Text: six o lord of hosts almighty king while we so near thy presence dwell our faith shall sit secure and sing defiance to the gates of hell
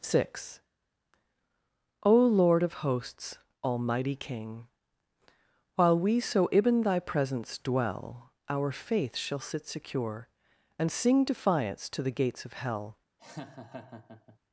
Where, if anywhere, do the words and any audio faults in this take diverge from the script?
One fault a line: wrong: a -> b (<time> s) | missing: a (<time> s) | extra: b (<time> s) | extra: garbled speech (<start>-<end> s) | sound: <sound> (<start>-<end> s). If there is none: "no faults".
wrong: near -> ibn (6.5 s)
sound: laugh (13.2-14.4 s)